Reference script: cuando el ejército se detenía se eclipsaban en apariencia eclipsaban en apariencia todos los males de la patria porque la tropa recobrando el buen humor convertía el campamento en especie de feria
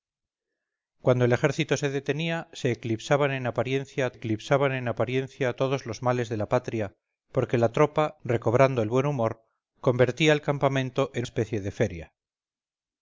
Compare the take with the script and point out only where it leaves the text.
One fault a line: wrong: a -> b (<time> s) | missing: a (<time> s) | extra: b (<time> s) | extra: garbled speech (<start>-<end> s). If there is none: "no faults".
no faults